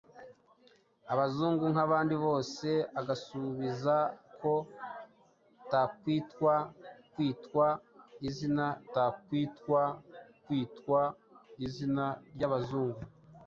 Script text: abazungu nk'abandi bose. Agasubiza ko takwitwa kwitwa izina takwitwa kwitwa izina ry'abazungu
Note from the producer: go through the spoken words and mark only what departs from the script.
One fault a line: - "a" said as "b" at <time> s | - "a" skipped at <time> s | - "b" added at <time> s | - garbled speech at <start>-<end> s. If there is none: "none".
none